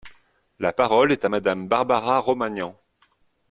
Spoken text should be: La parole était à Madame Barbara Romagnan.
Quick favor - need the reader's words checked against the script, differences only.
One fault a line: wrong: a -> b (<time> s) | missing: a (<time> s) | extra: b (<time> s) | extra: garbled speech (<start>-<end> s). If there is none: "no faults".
wrong: était -> est (1.1 s)